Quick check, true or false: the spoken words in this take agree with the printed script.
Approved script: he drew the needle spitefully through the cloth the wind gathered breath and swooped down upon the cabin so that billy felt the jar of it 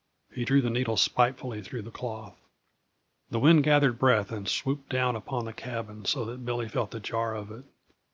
true